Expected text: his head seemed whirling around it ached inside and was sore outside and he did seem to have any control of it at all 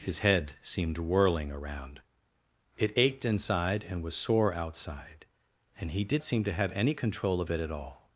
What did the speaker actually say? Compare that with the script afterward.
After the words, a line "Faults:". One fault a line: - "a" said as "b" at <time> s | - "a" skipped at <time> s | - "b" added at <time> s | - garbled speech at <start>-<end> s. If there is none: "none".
his head seemed whirling around it ached inside and was sore outside and he did seem to have any control of it at all
Faults:
none